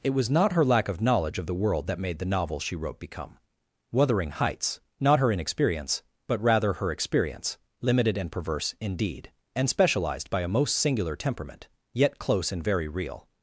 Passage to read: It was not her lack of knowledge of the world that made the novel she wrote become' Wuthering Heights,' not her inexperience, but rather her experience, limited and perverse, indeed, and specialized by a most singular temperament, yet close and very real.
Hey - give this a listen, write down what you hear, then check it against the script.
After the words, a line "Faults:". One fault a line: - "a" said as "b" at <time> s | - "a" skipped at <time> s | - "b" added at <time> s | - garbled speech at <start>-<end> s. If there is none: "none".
It was not her lack of knowledge of the world that made the novel she wrote become' Wuthering Heights,' not her inexperience, but rather her experience, limited and perverse, indeed, and specialized by a most singular temperament, yet close and very real.
Faults:
none